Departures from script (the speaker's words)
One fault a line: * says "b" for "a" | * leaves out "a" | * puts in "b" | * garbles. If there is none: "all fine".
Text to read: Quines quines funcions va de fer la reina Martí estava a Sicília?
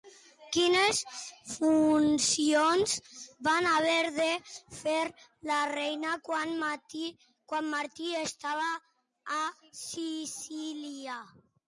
* leaves out "quines"
* puts in "haver"
* puts in "quan"